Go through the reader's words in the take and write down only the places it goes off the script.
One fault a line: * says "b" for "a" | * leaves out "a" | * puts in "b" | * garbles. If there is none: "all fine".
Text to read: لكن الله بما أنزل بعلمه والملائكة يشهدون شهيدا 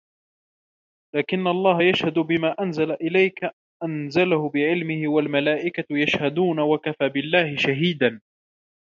* puts in "يشهد"
* puts in "إليك أنزله"
* puts in "وكفى بالله"